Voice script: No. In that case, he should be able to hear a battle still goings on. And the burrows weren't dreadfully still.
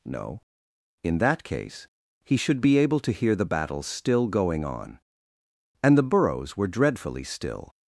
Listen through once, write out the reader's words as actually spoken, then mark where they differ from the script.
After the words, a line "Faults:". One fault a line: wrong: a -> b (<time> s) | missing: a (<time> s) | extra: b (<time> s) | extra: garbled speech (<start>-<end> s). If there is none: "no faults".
No. In that case, he should be able to hear the battle still going on. And the burrows were dreadfully still.
Faults:
wrong: a -> the (3.4 s)
wrong: goings -> going (4.3 s)
wrong: weren't -> were (6.6 s)